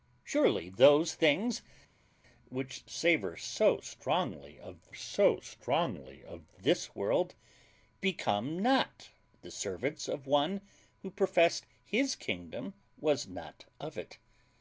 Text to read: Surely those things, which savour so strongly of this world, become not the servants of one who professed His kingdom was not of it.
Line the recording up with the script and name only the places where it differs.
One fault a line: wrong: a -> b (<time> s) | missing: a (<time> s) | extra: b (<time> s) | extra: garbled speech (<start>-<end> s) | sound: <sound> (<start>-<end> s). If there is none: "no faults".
extra: so strongly of (4.9 s)